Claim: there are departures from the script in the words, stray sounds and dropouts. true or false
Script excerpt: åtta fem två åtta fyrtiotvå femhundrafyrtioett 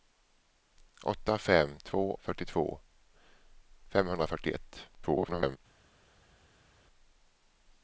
true